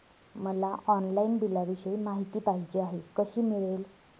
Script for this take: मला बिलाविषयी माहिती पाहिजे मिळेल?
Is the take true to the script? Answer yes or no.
no